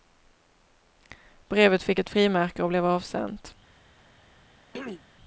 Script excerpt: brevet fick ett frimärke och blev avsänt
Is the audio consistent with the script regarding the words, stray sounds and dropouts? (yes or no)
no